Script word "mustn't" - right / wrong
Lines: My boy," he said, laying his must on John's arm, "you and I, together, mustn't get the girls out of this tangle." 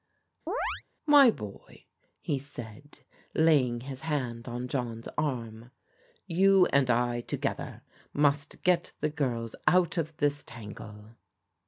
wrong